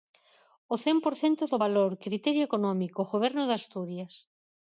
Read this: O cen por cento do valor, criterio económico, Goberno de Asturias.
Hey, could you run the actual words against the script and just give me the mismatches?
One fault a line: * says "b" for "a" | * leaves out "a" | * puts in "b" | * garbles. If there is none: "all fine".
all fine